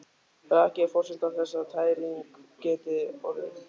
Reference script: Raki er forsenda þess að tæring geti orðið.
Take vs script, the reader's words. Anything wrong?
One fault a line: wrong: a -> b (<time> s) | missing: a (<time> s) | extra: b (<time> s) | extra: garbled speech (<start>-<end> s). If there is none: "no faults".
no faults